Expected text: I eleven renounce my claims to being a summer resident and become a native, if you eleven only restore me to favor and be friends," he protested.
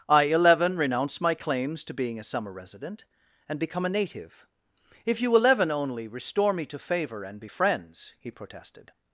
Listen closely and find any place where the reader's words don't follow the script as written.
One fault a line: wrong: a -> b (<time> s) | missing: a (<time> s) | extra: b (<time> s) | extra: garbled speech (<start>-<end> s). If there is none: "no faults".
no faults